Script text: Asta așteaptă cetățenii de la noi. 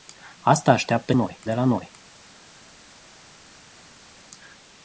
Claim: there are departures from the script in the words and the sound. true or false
true